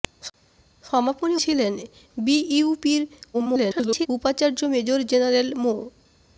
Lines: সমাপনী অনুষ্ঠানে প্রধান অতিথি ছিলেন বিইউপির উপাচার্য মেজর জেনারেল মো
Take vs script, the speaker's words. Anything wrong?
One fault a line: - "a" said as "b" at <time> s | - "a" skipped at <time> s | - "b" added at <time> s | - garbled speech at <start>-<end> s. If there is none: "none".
- "অনুষ্ঠানে প্রধান অতিথি" skipped at 1.4 s
- garbled speech at 3.3-4.1 s